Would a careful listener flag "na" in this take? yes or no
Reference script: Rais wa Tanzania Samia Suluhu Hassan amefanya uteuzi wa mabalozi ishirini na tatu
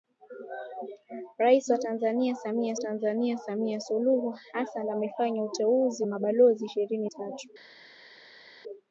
yes